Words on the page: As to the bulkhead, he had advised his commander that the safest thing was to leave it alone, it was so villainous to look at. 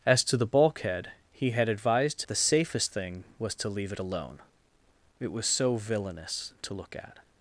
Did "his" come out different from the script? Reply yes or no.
yes